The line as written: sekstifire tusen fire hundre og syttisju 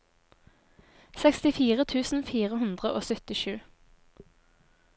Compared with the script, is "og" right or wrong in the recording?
right